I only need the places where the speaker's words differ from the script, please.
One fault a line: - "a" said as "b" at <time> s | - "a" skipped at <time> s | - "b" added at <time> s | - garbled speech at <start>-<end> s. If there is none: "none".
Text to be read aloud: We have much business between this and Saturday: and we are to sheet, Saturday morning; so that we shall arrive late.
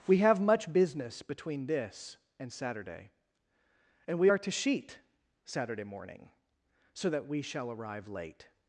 none